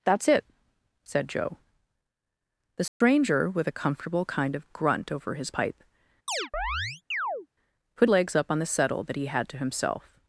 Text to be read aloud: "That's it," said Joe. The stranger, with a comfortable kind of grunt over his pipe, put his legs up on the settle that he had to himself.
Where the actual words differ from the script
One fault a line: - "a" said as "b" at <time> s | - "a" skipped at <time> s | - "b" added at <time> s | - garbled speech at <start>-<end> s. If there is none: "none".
- "his" skipped at 8.1 s